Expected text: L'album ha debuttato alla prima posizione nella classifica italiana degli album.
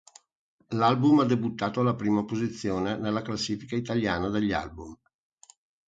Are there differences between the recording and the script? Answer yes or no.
no